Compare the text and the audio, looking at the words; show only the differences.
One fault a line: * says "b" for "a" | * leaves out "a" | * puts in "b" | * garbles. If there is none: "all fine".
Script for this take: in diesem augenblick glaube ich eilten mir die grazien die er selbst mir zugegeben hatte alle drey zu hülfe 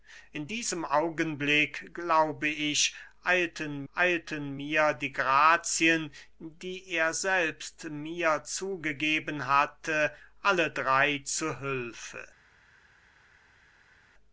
* puts in "eilten"